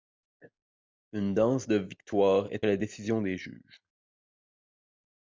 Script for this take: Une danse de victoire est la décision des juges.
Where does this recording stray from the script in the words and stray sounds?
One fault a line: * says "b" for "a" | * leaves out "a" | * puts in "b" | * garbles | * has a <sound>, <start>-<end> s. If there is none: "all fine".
all fine